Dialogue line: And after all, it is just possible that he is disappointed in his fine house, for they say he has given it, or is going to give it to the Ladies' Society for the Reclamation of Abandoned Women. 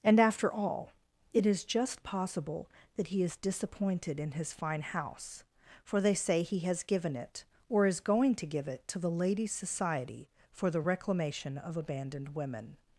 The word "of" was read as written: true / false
true